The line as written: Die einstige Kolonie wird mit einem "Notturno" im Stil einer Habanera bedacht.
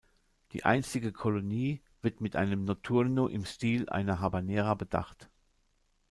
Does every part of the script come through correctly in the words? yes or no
yes